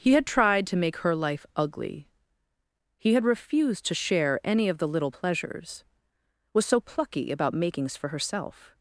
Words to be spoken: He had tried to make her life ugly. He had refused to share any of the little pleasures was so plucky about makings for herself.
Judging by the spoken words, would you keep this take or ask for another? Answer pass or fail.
pass